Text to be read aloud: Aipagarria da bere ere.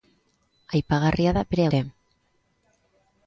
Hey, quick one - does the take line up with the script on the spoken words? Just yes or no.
yes